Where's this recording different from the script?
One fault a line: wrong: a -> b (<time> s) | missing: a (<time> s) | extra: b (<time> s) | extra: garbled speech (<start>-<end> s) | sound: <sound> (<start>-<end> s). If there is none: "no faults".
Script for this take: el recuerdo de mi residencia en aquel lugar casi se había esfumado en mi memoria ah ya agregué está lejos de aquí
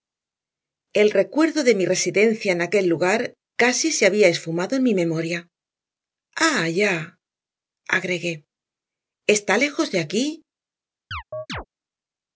sound: chirp (11.1-11.7 s)